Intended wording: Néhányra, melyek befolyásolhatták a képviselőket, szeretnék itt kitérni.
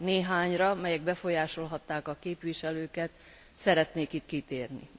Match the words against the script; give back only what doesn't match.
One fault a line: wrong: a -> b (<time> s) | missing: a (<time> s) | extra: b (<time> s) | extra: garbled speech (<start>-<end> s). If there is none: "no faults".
no faults